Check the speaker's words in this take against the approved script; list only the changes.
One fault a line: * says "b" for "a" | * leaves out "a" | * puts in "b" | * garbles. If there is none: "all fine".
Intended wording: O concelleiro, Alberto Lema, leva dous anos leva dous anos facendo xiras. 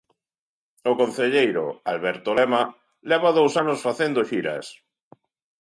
* leaves out "leva dous anos"